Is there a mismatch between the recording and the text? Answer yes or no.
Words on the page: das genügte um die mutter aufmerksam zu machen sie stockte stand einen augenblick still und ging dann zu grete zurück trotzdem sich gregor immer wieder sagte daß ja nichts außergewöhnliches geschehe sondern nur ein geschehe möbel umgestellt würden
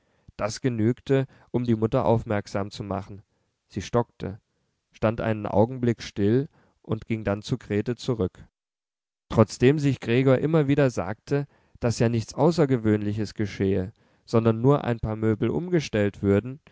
yes